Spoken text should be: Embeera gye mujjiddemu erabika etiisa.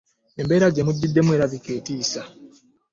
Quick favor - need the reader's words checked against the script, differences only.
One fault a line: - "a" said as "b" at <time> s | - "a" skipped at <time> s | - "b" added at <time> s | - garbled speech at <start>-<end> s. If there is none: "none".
none